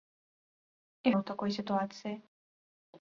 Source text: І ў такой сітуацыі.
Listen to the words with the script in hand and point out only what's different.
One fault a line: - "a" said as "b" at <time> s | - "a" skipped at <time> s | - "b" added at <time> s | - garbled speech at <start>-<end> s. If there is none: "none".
none